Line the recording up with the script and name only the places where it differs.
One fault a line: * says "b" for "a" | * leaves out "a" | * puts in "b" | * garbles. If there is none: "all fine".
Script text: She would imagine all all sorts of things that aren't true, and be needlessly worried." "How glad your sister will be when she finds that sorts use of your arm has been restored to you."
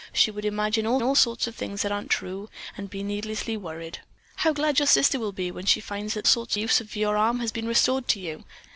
all fine